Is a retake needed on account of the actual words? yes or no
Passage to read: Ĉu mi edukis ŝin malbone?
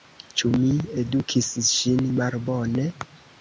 no